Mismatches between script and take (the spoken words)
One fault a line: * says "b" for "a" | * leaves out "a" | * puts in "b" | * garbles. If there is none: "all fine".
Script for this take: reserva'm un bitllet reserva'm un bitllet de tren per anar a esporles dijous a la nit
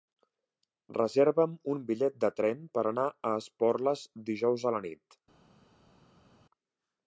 * leaves out "reserva'm un bitllet"